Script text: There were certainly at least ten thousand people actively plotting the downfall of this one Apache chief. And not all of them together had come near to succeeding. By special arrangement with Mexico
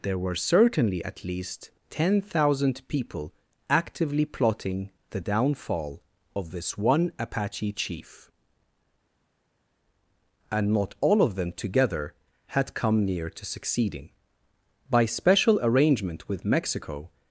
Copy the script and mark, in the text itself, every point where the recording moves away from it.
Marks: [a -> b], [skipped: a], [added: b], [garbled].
There were certainly at least ten thousand people actively plotting the downfall of this one Apache chief. And not all of them together had come near to succeeding. By special arrangement with Mexico